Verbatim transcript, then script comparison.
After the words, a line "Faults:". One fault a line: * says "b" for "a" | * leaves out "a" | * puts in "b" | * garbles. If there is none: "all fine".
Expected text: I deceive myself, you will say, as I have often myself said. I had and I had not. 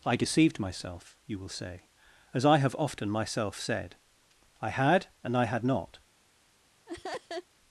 I deceived myself, you will say, as I have often myself said. I had and I had not.
Faults:
* says "deceived" for "deceive"